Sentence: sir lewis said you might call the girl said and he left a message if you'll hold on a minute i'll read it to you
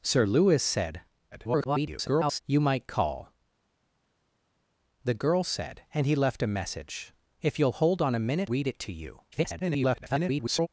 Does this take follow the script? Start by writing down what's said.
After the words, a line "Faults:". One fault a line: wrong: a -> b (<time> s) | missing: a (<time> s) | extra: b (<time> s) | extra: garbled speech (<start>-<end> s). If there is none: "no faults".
sir lewis said [garbled] you might call the girl said and he left a message if you'll hold on a minute read it to you [garbled]
Faults:
extra: garbled speech (1.3-2.4 s)
missing: i'll (8.5 s)
extra: garbled speech (9.3-10.7 s)